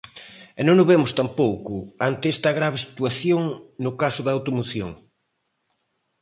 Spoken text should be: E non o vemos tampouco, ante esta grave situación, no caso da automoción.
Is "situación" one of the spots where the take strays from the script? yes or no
no